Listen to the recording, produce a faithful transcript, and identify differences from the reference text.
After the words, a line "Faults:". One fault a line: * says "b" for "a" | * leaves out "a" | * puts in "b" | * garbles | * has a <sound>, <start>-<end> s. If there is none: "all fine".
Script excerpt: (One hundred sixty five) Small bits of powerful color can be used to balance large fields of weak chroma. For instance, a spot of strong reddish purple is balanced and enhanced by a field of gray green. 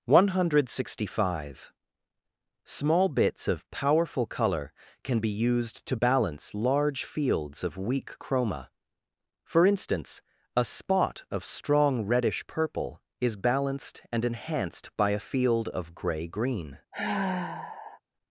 (One hundred sixty five) Small bits of powerful color can be used to balance large fields of weak chroma. For instance, a spot of strong reddish purple is balanced and enhanced by a field of gray green.
Faults:
* has a sigh, 16.9-18.0 s